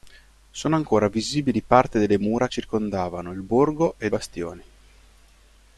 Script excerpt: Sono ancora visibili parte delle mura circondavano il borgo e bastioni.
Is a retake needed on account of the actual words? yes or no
no